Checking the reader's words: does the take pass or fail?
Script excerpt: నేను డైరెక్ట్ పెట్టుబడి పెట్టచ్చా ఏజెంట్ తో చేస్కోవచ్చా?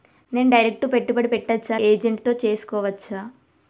pass